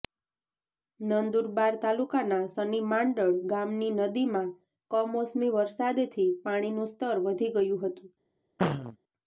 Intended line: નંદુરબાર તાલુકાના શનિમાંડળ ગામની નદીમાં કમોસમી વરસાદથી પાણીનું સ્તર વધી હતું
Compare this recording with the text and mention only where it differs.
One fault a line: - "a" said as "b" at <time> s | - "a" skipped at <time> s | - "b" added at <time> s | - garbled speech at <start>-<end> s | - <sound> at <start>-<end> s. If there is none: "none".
- "ગયું" added at 7.5 s
- throat clearing at 8.6-9.0 s